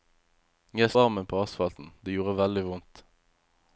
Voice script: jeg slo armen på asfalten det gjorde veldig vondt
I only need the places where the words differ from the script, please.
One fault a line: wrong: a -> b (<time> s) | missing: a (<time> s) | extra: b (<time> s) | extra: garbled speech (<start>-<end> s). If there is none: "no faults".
missing: slo (0.9 s)